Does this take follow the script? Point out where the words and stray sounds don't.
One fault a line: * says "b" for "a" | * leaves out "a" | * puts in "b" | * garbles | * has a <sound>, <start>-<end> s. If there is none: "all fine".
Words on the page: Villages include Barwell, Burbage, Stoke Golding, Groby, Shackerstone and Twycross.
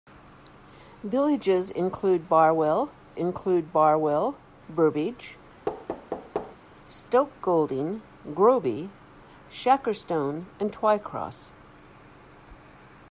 * puts in "include Barwell"
* has a thud, 5.7-6.6 s